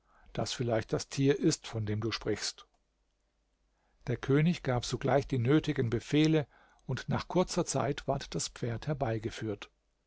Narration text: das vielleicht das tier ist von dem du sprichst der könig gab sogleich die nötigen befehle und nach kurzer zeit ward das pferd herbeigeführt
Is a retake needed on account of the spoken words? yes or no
no